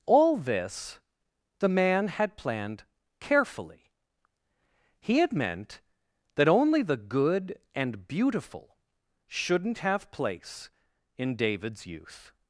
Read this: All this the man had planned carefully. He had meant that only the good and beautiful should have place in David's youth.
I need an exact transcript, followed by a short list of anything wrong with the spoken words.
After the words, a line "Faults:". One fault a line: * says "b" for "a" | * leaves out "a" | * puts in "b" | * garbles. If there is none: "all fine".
All this the man had planned carefully. He had meant that only the good and beautiful shouldn't have place in David's youth.
Faults:
* says "shouldn't" for "should"